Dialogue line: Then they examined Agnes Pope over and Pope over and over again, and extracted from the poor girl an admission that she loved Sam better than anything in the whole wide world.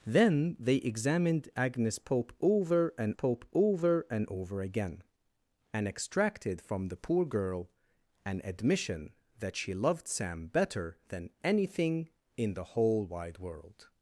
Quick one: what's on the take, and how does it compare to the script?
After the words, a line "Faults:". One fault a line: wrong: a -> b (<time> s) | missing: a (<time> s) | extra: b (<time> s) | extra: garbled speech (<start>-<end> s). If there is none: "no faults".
Then they examined Agnes Pope over and Pope over and over again, and extracted from the poor girl an admission that she loved Sam better than anything in the whole wide world.
Faults:
no faults